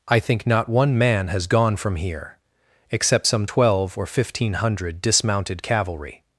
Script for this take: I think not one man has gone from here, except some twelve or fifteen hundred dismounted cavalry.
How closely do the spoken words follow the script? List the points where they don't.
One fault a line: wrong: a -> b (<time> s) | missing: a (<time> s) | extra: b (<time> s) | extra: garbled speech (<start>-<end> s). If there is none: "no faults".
no faults